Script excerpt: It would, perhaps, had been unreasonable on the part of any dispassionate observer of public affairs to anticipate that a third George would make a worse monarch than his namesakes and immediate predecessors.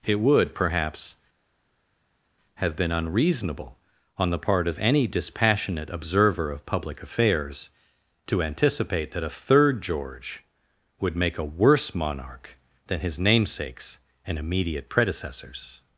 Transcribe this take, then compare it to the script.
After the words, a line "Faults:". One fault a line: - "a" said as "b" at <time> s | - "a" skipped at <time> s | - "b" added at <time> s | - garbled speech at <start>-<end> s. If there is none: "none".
It would, perhaps, have been unreasonable on the part of any dispassionate observer of public affairs to anticipate that a third George would make a worse monarch than his namesakes and immediate predecessors.
Faults:
- "had" said as "have" at 2.5 s